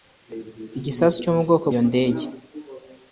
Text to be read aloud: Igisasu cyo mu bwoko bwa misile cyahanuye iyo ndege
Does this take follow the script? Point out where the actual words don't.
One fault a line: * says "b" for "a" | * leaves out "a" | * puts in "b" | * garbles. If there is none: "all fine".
* leaves out "bwa misile cyahanuye"